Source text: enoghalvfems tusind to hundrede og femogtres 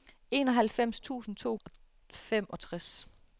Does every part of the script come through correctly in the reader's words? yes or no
no